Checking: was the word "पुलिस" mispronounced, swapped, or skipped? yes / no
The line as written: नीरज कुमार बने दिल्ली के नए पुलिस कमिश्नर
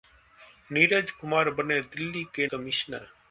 yes